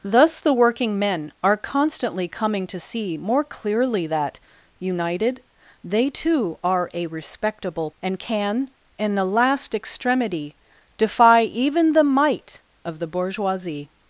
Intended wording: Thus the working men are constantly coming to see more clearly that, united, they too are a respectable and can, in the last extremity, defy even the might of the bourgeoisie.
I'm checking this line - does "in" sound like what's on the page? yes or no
yes